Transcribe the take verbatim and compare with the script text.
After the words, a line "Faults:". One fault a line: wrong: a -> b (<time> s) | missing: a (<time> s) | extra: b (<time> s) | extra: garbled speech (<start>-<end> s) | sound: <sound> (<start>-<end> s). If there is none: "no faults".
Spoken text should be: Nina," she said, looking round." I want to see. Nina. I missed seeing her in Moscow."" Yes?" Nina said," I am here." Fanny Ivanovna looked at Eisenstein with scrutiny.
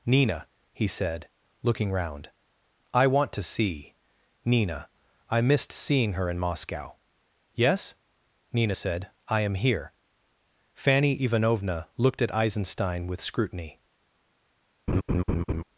Nina," he said, looking round." I want to see. Nina. I missed seeing her in Moscow."" Yes?" Nina said," I am here." Fanny Ivanovna looked at Eisenstein with scrutiny.
Faults:
wrong: she -> he (0.7 s)
sound: laugh (14.9-15.6 s)